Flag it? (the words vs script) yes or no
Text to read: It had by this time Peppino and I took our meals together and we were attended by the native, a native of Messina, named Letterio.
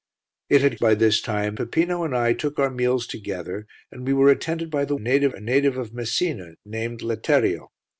no